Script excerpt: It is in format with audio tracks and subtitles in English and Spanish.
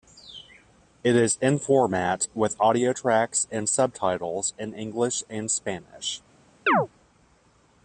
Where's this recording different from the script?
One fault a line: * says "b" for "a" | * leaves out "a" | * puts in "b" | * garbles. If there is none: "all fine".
all fine